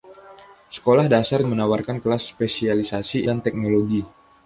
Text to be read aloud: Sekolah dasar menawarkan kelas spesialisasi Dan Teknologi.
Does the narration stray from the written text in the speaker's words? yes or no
no